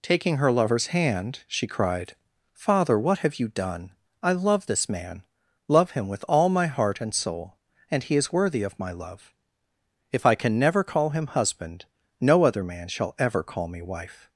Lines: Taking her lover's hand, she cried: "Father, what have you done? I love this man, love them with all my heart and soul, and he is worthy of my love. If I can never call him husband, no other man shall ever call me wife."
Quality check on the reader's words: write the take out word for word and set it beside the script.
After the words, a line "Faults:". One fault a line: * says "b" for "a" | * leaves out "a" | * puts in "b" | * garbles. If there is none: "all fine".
Taking her lover's hand, she cried: "Father, what have you done? I love this man, love him with all my heart and soul, and he is worthy of my love. If I can never call him husband, no other man shall ever call me wife."
Faults:
* says "him" for "them"